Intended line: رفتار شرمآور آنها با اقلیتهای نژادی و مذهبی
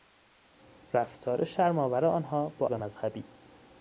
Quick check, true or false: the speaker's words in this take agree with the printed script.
false